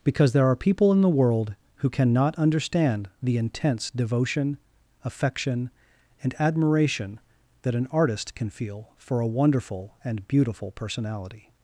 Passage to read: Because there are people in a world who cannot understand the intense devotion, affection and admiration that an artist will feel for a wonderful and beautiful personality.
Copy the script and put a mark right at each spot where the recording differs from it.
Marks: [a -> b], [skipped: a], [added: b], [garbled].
Because there are people in [a -> the] world who cannot understand the intense devotion, affection and admiration that an artist [will -> can] feel for a wonderful and beautiful personality.